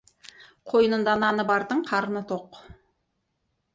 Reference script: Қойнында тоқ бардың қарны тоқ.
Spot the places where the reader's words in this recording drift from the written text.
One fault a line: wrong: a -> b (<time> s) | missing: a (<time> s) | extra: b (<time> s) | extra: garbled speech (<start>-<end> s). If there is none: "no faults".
wrong: тоқ -> наны (1.2 s)